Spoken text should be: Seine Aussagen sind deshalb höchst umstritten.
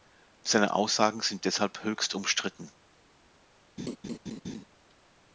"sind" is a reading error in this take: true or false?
false